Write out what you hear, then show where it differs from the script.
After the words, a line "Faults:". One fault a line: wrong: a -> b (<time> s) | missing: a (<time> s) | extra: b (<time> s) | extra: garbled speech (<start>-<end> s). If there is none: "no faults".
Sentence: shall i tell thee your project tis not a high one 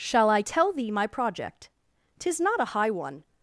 shall i tell thee my project tis not a high one
Faults:
wrong: your -> my (0.9 s)